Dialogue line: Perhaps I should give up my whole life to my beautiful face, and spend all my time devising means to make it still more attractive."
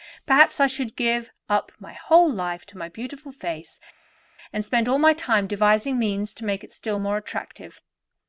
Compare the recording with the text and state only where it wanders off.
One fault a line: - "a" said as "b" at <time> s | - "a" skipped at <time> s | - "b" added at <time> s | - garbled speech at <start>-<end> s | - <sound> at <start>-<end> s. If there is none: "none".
none